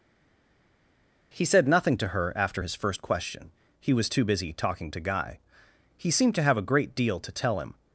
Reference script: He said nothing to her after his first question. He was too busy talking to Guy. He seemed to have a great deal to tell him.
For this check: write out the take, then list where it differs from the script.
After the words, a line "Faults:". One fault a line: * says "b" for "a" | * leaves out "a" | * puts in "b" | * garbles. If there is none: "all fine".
He said nothing to her after his first question. He was too busy talking to Guy. He seemed to have a great deal to tell him.
Faults:
all fine